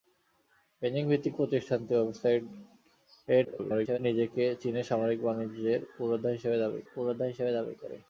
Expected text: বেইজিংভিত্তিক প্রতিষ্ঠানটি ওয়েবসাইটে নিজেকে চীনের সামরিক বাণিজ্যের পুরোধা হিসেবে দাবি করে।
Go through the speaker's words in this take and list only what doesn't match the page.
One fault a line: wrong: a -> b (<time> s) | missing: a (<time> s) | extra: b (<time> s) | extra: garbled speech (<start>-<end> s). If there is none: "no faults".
extra: garbled speech (3.4-4.0 s)
extra: পুরোধা হিসেবে দাবি (6.9 s)